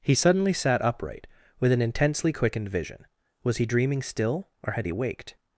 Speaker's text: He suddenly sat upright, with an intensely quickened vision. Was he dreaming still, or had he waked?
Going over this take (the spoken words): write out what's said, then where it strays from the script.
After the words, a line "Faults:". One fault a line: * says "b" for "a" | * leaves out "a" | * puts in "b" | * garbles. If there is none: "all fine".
He suddenly sat upright, with an intensely quickened vision. Was he dreaming still, or had he waked?
Faults:
all fine